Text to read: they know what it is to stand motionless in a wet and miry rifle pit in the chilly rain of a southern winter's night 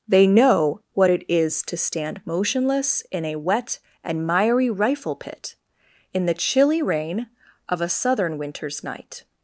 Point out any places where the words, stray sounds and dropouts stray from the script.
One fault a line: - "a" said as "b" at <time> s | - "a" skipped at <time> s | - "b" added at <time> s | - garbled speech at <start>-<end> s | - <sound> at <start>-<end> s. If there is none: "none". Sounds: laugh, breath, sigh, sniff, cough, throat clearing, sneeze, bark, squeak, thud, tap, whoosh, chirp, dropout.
none